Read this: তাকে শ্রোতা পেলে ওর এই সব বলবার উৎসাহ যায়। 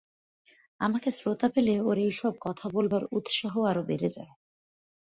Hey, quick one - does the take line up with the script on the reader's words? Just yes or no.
no